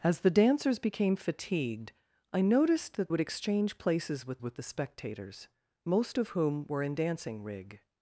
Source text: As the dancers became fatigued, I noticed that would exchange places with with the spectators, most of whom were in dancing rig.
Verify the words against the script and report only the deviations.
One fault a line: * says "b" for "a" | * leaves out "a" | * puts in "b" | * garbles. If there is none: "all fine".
all fine